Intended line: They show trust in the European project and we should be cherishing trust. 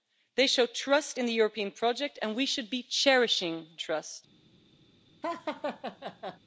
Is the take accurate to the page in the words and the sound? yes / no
no